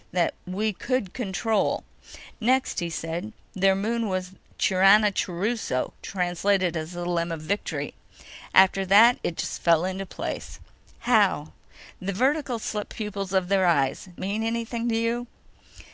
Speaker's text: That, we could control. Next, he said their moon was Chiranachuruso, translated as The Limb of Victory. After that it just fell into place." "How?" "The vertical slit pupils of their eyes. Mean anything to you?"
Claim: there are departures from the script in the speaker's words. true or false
false